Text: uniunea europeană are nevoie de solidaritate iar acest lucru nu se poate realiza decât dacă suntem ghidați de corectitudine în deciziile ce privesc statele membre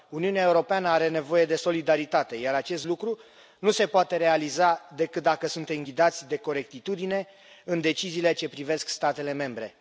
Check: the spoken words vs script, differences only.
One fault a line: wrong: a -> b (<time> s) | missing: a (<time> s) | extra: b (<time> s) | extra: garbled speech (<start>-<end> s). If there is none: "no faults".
no faults